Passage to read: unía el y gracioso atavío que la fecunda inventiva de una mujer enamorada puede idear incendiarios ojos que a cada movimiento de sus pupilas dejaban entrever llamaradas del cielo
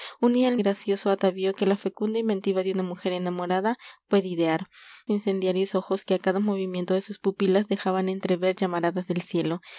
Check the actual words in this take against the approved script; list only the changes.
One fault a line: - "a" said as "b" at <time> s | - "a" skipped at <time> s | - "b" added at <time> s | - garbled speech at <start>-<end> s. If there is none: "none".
none